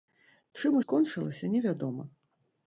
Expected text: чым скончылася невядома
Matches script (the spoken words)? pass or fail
pass